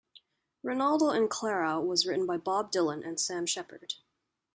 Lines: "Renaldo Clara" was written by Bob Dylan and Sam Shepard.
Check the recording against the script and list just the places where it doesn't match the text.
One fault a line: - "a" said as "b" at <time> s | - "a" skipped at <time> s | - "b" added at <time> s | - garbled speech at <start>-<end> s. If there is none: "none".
- "and" added at 1.1 s